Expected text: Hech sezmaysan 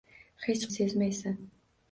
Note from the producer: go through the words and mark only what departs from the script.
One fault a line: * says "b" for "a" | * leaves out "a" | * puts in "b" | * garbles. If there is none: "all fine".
all fine